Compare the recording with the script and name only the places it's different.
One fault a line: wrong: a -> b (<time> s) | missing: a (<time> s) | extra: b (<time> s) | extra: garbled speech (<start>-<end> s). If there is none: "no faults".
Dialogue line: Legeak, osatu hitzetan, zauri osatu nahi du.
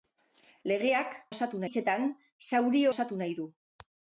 no faults